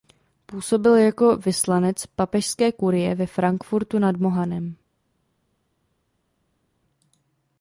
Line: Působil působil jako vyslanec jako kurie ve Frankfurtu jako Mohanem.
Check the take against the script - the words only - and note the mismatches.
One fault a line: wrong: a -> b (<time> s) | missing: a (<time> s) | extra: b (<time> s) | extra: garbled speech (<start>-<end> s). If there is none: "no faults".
missing: působil (0.9 s)
wrong: jako -> papežské (2.0 s)
wrong: jako -> nad (4.0 s)